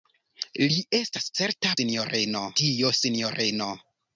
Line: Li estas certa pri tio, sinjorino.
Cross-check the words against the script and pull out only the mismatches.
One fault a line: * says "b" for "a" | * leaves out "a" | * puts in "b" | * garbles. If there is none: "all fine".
* says "sinjorino" for "pri"